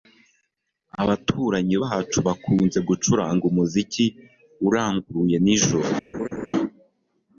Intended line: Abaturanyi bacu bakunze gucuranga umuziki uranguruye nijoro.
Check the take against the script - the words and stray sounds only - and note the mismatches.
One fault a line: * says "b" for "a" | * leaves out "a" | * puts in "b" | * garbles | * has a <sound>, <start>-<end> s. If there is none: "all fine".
* has a laugh, 6.1-6.5 s